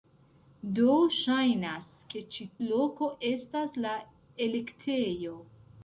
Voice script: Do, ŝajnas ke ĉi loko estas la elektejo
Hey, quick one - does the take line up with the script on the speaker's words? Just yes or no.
yes